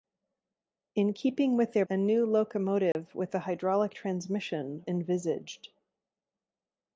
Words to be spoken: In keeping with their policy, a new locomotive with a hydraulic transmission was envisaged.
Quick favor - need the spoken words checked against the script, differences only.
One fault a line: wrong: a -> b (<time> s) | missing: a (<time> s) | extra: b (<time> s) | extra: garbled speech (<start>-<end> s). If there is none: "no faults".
missing: policy (1.8 s)
missing: was (4.9 s)